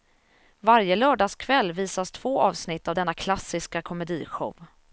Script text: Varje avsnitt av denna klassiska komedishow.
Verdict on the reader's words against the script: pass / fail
fail